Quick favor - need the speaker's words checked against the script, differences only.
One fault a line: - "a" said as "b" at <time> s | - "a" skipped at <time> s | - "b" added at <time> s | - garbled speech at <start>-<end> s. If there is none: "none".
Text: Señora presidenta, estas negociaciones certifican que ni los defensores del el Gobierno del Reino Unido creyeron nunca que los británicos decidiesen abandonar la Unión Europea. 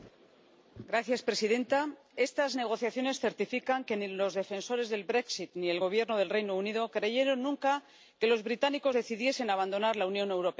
- "ni" added at 5.5 s